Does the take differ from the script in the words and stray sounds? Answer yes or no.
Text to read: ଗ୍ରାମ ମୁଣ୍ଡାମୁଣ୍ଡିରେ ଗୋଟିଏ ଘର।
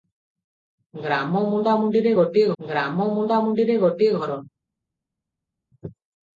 yes